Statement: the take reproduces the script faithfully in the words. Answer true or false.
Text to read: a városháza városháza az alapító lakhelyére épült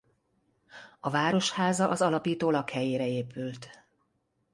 false